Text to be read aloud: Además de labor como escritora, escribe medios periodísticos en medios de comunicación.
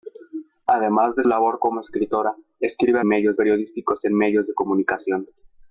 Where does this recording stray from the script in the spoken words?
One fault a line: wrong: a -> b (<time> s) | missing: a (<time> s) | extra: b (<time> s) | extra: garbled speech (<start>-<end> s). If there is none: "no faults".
no faults